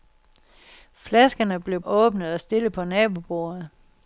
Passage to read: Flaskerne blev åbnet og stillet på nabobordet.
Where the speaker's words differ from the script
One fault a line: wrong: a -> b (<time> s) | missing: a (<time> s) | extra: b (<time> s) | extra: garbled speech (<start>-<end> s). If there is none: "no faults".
no faults